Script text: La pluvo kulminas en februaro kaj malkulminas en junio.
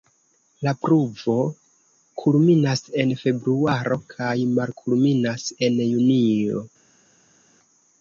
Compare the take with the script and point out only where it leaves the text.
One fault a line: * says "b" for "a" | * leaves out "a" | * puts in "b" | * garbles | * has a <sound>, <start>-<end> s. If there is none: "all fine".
all fine